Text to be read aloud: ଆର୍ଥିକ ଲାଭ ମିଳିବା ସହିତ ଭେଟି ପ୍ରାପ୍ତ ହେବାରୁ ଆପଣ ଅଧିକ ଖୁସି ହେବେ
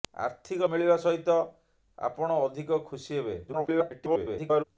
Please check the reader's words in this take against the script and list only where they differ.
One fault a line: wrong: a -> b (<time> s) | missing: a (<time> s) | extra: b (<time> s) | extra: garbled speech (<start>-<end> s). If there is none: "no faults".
missing: ଲାଭ (0.7 s)
missing: ଭେଟି ପ୍ରାପ୍ତ ହେବାରୁ (1.4 s)
extra: garbled speech (3.5-4.6 s)